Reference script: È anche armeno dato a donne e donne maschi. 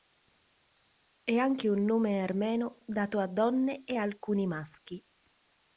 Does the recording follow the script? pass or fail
fail